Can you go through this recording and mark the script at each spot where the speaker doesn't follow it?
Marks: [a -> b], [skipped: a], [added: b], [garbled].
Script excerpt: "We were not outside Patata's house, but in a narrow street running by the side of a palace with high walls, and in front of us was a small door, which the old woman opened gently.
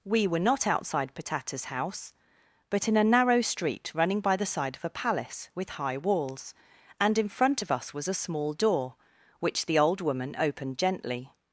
"We were not outside Patata's house, but in a narrow street running by the side of a palace with high walls, and in front of us was a small door, which the old woman opened gently.